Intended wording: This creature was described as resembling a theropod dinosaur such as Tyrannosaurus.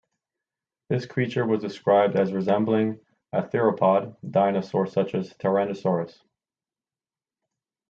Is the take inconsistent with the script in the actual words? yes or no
no